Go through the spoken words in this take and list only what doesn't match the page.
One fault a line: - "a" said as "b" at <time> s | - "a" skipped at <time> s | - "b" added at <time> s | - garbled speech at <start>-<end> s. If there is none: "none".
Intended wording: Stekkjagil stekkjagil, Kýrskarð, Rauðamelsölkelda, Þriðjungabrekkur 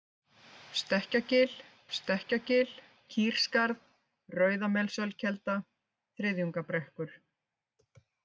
none